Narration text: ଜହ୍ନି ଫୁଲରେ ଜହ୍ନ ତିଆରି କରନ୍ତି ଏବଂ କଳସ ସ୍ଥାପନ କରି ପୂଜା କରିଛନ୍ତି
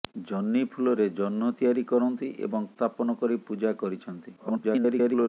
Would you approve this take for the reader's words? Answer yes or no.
no